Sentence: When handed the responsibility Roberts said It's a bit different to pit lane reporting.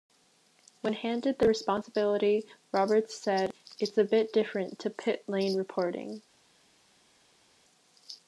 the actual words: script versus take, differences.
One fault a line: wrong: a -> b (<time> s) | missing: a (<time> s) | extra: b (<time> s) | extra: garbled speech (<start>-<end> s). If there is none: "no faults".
no faults